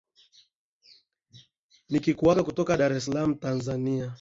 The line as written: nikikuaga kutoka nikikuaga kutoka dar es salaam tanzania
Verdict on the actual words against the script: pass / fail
fail